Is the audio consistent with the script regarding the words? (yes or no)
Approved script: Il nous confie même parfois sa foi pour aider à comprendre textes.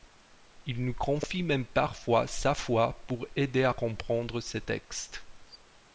no